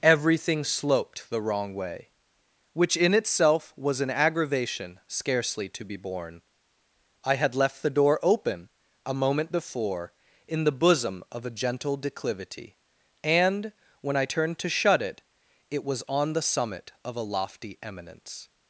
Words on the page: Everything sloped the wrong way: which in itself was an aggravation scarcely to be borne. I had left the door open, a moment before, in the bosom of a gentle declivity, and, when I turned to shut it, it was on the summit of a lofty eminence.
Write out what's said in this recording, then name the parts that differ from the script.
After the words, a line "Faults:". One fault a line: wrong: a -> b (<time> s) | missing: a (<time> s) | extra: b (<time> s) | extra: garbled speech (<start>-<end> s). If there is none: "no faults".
Everything sloped the wrong way: which in itself was an aggravation scarcely to be borne. I had left the door open, a moment before, in the bosom of a gentle declivity, and, when I turned to shut it, it was on the summit of a lofty eminence.
Faults:
no faults